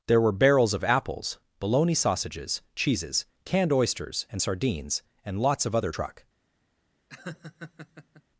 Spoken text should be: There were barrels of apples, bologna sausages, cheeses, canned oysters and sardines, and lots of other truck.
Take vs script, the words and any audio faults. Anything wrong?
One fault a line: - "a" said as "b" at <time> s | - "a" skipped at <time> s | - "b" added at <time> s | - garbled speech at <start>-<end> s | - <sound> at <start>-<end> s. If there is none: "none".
- laugh at 7.1-8.2 s